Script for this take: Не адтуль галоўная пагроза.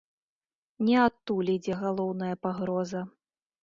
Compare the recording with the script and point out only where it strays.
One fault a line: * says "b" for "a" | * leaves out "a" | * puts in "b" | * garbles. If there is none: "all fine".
* puts in "ідзе"